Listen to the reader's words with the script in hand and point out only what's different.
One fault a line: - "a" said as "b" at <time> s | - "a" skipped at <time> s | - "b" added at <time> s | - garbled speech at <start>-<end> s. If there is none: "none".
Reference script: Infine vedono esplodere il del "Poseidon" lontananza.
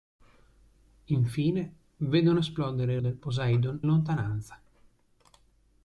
none